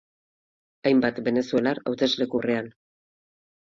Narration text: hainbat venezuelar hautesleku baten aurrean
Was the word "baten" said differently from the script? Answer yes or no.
yes